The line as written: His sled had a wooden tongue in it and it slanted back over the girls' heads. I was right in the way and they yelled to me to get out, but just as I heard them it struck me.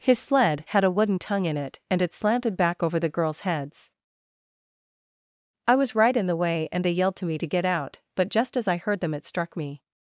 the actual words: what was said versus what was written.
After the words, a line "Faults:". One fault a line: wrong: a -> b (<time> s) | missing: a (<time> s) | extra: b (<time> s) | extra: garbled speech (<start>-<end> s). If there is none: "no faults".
His sled had a wooden tongue in it and it slanted back over the girls' heads. I was right in the way and they yelled to me to get out, but just as I heard them it struck me.
Faults:
no faults